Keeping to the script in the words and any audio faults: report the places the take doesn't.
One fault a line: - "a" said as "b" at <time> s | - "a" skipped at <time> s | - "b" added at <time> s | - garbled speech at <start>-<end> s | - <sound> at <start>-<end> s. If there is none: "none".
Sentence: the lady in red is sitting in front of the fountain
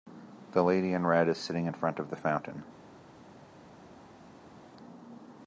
none